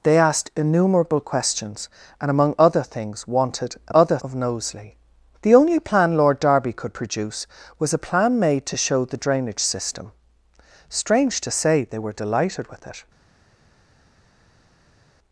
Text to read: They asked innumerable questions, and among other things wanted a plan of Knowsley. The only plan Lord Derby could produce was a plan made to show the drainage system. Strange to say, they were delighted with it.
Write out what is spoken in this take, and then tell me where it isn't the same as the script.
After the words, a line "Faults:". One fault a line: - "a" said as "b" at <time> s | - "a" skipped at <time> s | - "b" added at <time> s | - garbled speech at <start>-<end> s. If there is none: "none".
They asked innumerable questions, and among other things wanted a other of Knowsley. The only plan Lord Derby could produce was a plan made to show the drainage system. Strange to say, they were delighted with it.
Faults:
- "plan" said as "other" at 3.9 s